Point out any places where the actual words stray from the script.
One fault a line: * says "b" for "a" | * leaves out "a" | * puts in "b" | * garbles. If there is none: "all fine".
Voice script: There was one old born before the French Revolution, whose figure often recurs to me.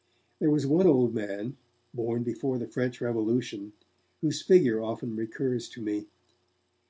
* puts in "man"